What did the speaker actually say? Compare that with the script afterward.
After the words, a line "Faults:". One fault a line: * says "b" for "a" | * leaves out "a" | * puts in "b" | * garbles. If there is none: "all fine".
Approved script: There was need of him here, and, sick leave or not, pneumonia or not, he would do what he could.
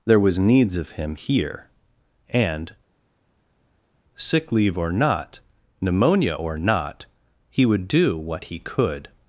There was needs of him here, and, sick leave or not, pneumonia or not, he would do what he could.
Faults:
* says "needs" for "need"